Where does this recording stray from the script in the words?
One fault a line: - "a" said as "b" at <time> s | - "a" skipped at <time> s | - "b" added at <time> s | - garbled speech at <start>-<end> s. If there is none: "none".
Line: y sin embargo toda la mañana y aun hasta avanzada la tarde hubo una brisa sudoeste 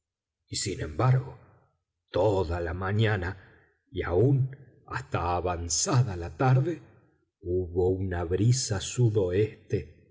none